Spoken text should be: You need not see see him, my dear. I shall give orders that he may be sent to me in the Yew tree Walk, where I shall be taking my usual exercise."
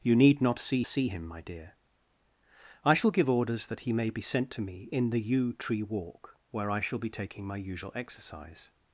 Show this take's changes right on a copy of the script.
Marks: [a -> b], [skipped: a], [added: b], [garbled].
You need not see see him, my dear. I shall give orders that he may be sent to me in the Yew tree Walk, where I shall be taking my usual exercise."